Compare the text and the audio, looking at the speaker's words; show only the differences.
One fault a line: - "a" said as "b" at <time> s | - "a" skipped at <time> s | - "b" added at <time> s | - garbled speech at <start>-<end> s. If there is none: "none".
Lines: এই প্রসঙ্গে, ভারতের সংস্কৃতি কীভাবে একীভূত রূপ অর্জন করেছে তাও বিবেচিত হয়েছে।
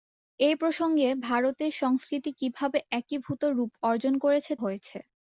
- "তাও বিবেচিত" skipped at 4.5 s